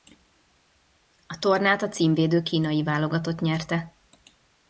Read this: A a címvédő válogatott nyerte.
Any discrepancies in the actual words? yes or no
yes